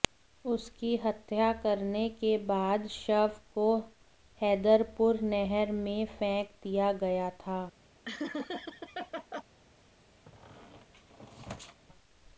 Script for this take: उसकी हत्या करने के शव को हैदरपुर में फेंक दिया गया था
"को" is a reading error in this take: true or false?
false